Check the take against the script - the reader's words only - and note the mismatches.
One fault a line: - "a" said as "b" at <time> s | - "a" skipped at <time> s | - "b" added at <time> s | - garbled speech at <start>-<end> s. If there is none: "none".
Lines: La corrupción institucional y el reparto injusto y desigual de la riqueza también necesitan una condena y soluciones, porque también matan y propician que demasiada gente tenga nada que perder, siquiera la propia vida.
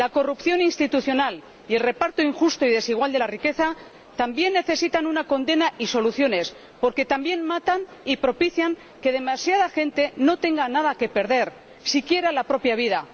- "no" added at 10.2 s